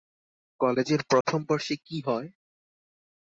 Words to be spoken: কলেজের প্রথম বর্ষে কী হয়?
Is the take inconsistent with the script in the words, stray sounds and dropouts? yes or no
yes